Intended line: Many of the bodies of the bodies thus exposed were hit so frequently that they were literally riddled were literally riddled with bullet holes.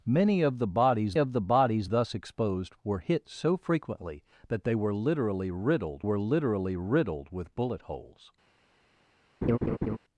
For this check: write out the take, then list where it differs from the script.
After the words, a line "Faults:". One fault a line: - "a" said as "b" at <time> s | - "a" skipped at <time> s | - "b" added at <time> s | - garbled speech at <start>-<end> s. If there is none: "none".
Many of the bodies of the bodies thus exposed were hit so frequently that they were literally riddled were literally riddled with bullet holes.
Faults:
none